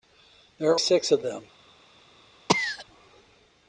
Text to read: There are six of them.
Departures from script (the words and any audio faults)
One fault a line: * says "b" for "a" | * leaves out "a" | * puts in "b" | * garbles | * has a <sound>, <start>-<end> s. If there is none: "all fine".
* has a cough, 2.5-2.9 s